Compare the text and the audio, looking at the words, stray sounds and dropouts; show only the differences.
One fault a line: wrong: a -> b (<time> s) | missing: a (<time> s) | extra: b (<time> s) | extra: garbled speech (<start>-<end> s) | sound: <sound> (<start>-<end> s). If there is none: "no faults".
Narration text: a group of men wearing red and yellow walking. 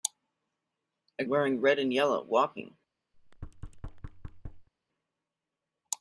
missing: group of men (1.2 s)
sound: thud (3.1-4.7 s)